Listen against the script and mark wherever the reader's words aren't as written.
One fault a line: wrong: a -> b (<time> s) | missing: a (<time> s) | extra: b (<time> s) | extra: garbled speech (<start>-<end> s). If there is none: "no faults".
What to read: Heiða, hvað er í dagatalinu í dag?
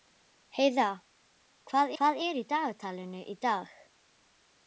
extra: hvað (2.0 s)